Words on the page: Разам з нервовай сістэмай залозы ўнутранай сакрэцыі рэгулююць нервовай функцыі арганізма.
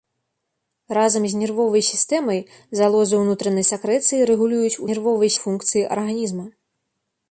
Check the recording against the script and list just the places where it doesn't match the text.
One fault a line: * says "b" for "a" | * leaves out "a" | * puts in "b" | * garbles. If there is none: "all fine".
all fine